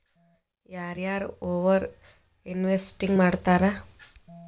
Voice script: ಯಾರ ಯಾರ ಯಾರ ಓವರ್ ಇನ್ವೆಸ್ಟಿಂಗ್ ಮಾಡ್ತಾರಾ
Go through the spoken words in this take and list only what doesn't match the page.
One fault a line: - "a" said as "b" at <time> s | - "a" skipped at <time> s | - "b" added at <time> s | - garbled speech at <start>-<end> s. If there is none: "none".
- "ಯಾರ" skipped at 1.2 s